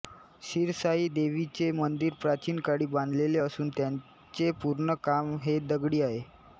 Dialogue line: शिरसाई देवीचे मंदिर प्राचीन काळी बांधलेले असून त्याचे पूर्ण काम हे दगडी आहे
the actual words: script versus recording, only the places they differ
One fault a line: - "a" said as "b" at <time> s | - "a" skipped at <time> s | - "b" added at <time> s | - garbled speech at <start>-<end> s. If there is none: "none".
none